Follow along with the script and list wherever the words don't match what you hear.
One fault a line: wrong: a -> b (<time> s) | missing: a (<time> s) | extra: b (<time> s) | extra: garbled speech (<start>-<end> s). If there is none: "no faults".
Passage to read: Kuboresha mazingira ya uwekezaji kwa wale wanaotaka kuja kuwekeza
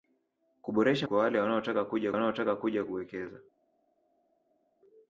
wrong: mazingira ya uwekezaji kwa wale -> kwa wale wanaotaka kuja (1.0 s)